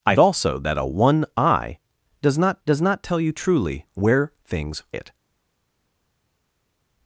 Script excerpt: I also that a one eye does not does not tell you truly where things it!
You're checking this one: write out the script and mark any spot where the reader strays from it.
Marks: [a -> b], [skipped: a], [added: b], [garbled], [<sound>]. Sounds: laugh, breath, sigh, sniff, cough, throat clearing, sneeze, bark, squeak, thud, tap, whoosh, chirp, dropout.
I also that a one eye does not does not tell you truly where things it!